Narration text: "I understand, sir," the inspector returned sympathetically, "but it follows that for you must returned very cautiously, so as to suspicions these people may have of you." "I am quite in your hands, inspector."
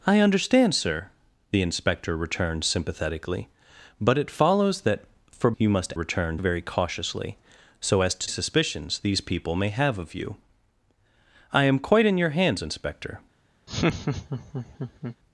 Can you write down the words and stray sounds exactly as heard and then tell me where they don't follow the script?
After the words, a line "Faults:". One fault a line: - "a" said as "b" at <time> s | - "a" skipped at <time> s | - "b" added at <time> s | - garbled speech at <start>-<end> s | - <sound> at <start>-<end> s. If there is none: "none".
"I understand, sir," the inspector returned sympathetically, "but it follows that for you must returned very cautiously, so as to suspicions these people may have of you." "I am quite in your hands, inspector."
Faults:
- laugh at 13.7-15.2 s